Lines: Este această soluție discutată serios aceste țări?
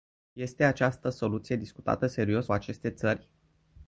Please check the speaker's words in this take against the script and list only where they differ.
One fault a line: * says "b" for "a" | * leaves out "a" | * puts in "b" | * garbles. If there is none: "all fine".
all fine